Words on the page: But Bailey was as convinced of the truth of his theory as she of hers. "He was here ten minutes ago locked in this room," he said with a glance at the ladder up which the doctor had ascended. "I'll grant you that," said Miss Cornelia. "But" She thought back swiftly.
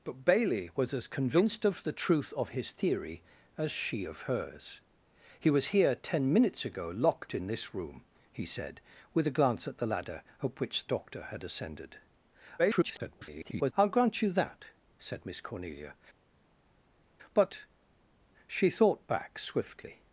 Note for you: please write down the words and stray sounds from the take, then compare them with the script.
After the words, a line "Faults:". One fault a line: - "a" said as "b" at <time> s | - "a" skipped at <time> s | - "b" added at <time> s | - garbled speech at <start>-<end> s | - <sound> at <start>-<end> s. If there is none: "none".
But Bailey was as convinced of the truth of his theory as she of hers. "He was here ten minutes ago locked in this room," he said with a glance at the ladder up which doctor had ascended. [garbled] "I'll grant you that," said Miss Cornelia. "But" She thought back swiftly.
Faults:
- "the" skipped at 10.9 s
- garbled speech at 12.6-13.7 s